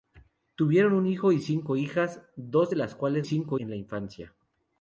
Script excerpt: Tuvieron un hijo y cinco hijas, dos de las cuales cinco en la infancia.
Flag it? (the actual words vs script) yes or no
no